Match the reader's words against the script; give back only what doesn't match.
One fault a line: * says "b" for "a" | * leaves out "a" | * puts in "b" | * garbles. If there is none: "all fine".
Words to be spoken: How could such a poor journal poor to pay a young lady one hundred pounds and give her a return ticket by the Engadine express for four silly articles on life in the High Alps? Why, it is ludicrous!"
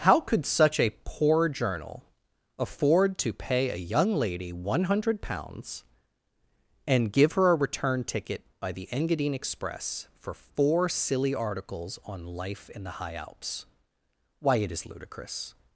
* says "afford" for "poor"